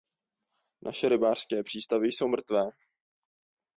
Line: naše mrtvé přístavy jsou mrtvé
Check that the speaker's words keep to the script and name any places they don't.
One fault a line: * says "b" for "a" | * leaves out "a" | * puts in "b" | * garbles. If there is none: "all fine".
* says "rybářské" for "mrtvé"